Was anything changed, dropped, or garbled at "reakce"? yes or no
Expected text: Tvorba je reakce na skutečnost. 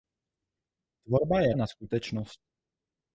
yes